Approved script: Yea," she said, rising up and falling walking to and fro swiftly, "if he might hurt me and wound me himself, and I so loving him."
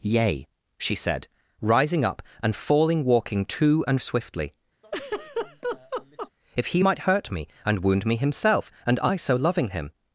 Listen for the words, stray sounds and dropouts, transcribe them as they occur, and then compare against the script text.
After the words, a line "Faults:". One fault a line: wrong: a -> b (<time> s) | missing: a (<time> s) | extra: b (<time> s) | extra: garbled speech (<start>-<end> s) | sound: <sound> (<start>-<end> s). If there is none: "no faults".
Yea," she said, rising up and falling walking to and swiftly, "if he might hurt me and wound me himself, and I so loving him."
Faults:
missing: fro (4.0 s)
sound: laugh (4.8-6.3 s)